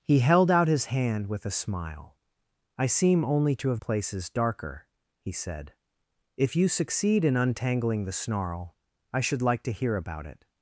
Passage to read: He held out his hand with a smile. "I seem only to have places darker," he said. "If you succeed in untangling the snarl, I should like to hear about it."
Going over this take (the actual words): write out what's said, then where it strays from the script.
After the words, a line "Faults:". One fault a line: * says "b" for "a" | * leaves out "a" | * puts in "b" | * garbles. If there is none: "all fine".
He held out his hand with a smile. "I seem only to have places darker," he said. "If you succeed in untangling the snarl, I should like to hear about it."
Faults:
all fine